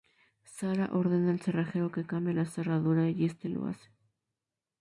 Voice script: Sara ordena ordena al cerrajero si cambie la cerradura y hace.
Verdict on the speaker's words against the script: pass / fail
fail